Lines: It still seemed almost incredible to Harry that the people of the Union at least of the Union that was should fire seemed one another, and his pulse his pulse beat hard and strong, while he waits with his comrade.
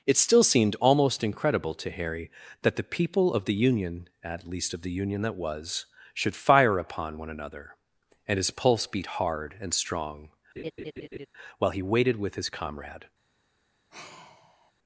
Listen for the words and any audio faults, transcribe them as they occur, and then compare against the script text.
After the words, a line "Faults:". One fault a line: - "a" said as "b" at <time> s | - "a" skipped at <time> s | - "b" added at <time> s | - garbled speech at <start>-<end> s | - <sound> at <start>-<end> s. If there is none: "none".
It still seemed almost incredible to Harry that the people of the Union at least of the Union that was should fire upon one another, and his pulse beat hard and strong, while he waited with his comrade.
Faults:
- "seemed" said as "upon" at 6.8 s
- "his pulse" skipped at 8.9 s
- laugh at 10.6-11.3 s
- "waits" said as "waited" at 11.8 s
- sigh at 13.9-14.7 s